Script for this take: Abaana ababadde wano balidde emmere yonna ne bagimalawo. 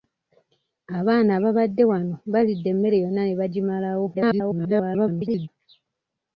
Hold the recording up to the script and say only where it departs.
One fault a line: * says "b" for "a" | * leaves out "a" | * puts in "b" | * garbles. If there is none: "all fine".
* garbles